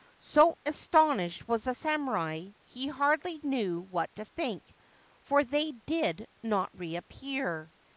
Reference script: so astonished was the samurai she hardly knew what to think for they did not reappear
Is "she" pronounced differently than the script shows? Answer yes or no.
yes